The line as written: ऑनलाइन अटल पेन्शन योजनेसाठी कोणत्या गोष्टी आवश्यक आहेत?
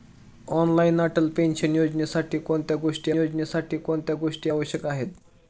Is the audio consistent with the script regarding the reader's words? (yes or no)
no